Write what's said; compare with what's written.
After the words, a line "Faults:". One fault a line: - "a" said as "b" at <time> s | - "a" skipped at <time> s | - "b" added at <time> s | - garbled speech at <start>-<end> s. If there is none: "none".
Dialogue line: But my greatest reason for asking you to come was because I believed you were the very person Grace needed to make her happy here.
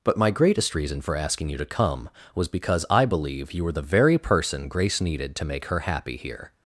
But my greatest reason for asking you to come was because I believe you were the very person Grace needed to make her happy here.
Faults:
- "believed" said as "believe" at 3.0 s